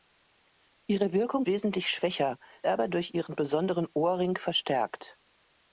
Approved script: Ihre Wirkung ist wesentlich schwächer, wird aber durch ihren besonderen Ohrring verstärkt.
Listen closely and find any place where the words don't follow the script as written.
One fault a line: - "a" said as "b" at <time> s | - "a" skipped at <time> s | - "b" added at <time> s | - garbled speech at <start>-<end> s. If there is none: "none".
- "ist" skipped at 1.5 s
- "wird" skipped at 2.4 s